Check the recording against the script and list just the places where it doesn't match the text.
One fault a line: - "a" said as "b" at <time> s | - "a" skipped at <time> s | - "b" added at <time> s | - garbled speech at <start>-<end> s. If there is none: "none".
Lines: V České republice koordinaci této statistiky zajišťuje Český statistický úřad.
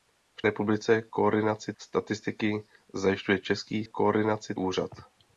- "České" skipped at 0.4 s
- "této" skipped at 1.7 s
- "statistický" said as "koordinaci" at 3.8 s